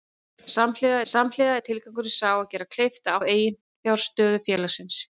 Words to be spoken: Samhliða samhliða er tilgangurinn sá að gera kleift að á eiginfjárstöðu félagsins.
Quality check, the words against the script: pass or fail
pass